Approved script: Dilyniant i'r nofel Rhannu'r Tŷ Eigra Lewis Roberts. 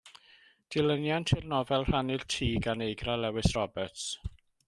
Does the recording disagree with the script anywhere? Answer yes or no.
yes